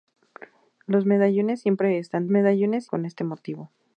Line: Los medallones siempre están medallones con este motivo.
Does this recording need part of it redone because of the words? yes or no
no